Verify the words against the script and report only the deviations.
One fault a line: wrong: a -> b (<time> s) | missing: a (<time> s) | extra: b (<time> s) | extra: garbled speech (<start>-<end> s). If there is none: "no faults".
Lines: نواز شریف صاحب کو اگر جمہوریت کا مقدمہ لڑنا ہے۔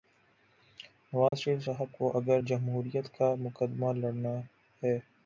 no faults